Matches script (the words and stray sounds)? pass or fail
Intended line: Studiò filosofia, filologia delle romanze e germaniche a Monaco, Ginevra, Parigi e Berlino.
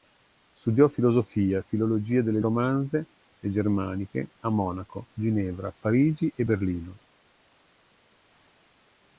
pass